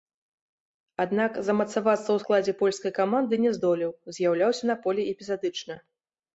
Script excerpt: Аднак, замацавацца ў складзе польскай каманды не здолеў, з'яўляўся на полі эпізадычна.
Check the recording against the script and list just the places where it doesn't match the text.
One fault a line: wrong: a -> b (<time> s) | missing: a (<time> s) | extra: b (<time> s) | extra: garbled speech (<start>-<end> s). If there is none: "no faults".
no faults